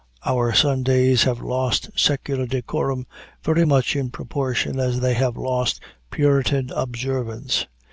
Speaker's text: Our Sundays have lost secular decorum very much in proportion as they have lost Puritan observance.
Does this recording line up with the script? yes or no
yes